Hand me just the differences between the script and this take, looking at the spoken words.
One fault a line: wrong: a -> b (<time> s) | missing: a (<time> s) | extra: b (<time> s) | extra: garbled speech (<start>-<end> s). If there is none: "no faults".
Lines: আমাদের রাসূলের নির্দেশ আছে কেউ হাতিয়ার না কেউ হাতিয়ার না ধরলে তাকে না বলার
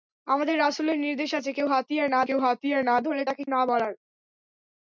no faults